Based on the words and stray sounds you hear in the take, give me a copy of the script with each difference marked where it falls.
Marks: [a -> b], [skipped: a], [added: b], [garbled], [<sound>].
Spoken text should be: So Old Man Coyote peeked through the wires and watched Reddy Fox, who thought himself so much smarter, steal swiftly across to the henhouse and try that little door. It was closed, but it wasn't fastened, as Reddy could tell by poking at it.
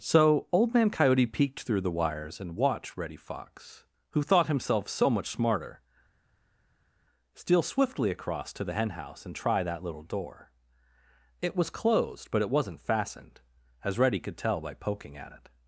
So Old Man Coyote peeked through the wires and watched Reddy Fox, who thought himself so much smarter, steal swiftly across to the henhouse and try that little door. It was closed, but it wasn't fastened, as Reddy could tell by poking at it.